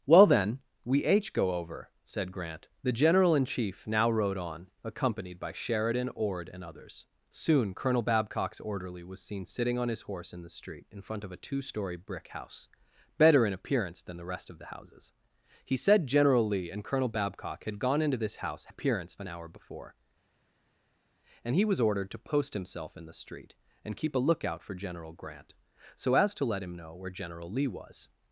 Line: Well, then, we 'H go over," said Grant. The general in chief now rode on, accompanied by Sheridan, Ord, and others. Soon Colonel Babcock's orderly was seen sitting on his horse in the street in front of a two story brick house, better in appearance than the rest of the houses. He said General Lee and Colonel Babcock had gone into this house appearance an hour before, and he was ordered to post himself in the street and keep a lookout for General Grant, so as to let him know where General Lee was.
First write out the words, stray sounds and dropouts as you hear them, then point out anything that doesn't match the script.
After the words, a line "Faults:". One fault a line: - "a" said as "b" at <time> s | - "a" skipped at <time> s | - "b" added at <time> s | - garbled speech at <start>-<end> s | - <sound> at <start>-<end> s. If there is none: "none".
Well, then, we 'H go over," said Grant. The general in chief now rode on, accompanied by Sheridan, Ord, and others. Soon Colonel Babcock's orderly was seen sitting on his horse in the street in front of a two story brick house, better in appearance than the rest of the houses. He said General Lee and Colonel Babcock had gone into this house appearance an hour before, and he was ordered to post himself in the street and keep a lookout for General Grant, so as to let him know where General Lee was.
Faults:
none